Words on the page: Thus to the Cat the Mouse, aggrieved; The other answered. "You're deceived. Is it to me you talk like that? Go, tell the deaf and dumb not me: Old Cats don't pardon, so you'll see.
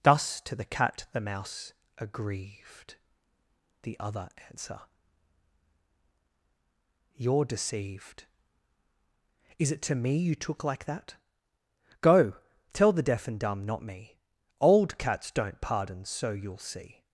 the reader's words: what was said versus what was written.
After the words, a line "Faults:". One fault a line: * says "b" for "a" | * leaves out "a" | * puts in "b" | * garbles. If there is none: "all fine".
Thus to the Cat the Mouse, aggrieved; The other answer. "You're deceived. Is it to me you took like that? Go, tell the deaf and dumb not me: Old Cats don't pardon, so you'll see.
Faults:
* says "answer" for "answered"
* says "took" for "talk"